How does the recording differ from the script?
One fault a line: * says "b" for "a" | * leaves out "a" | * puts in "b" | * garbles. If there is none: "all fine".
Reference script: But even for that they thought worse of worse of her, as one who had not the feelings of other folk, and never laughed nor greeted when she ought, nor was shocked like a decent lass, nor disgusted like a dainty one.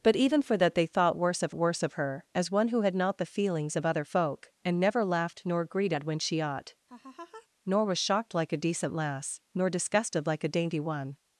all fine